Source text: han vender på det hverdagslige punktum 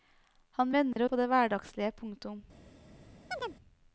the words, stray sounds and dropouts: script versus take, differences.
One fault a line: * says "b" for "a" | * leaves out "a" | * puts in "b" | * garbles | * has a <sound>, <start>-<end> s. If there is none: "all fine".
* has a dropout, 0.9-1.0 s
* has a chirp, 3.3-3.6 s